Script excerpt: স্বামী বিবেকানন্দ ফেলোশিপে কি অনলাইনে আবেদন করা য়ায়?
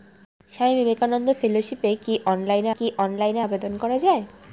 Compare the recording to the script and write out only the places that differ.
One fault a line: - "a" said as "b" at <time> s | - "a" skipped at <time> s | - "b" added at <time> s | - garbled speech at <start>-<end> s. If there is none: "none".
- "কি অনলাইনে" added at 2.8 s